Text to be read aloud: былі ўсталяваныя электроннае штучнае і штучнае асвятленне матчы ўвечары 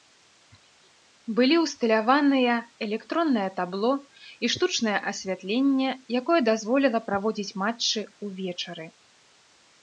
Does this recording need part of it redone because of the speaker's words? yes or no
yes